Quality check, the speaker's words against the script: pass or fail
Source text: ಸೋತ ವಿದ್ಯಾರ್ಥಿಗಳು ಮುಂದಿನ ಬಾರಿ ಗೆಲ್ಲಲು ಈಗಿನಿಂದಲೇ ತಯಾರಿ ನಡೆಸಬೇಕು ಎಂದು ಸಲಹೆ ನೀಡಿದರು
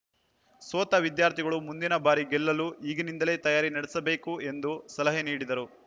pass